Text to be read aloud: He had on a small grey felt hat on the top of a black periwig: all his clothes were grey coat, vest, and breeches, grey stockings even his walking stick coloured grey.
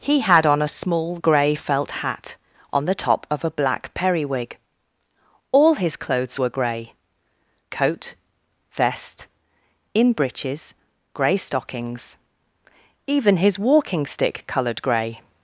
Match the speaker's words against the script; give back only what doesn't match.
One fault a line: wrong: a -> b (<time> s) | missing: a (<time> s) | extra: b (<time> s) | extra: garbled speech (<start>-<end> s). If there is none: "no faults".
wrong: and -> in (9.9 s)